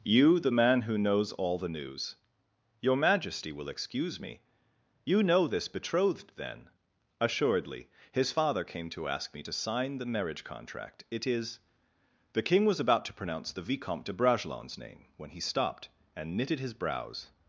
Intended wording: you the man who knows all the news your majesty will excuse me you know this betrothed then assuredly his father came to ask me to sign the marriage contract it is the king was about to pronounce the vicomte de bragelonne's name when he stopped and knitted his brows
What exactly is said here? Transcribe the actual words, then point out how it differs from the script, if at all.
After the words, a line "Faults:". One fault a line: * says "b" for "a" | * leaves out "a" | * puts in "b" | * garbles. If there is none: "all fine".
you the man who knows all the news your majesty will excuse me you know this betrothed then assuredly his father came to ask me to sign the marriage contract it is the king was about to pronounce the vicomte de bragelonne's name when he stopped and knitted his brows
Faults:
all fine